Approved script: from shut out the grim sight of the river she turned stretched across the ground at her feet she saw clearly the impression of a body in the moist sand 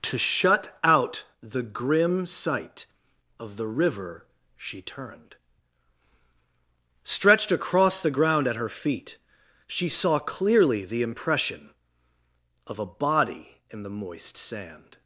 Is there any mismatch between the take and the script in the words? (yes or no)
yes